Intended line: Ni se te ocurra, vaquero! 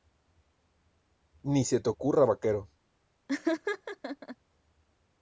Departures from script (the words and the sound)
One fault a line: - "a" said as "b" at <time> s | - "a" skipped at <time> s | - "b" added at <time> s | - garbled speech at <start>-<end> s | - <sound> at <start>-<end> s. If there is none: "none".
- laugh at 3.3-4.4 s